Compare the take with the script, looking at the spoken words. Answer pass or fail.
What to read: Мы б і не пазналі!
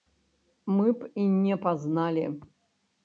pass